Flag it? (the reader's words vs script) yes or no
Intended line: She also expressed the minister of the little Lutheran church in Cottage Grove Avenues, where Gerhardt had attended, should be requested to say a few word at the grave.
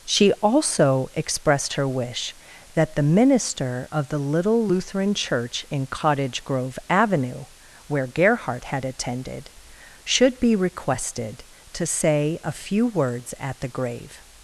yes